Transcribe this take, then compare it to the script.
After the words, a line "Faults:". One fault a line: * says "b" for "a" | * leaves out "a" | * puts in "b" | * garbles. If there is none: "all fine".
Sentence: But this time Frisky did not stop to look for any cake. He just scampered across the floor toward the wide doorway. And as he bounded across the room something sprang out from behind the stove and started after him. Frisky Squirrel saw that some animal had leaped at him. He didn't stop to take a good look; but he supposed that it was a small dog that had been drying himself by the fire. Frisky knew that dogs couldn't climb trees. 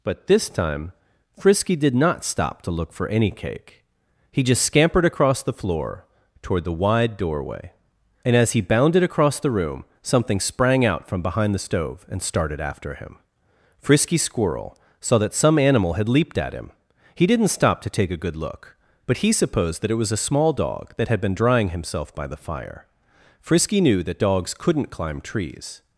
But this time Frisky did not stop to look for any cake. He just scampered across the floor toward the wide doorway. And as he bounded across the room something sprang out from behind the stove and started after him. Frisky Squirrel saw that some animal had leaped at him. He didn't stop to take a good look; but he supposed that it was a small dog that had been drying himself by the fire. Frisky knew that dogs couldn't climb trees.
Faults:
all fine